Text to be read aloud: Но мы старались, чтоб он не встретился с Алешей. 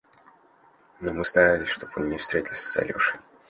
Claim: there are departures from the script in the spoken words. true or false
false